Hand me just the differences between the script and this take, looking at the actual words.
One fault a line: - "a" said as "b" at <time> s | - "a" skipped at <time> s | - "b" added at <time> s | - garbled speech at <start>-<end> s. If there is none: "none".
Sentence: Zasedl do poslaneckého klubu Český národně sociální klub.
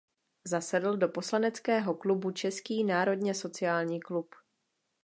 none